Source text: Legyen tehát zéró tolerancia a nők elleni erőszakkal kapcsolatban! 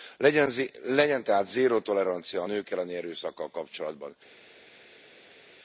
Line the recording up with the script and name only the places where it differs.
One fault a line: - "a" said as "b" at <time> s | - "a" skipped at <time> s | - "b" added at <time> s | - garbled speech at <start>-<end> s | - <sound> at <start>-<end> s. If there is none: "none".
none